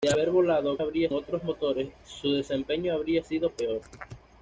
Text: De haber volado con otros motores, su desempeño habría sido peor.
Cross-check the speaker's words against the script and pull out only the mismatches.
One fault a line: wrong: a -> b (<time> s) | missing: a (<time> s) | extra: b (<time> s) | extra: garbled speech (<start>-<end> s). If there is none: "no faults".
wrong: con -> habría (0.8 s)